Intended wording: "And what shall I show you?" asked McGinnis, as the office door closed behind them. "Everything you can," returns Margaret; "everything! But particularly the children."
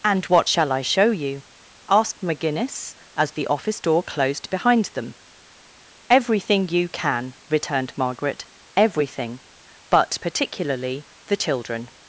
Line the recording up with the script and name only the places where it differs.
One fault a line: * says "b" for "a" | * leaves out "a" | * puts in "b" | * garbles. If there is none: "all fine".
* says "returned" for "returns"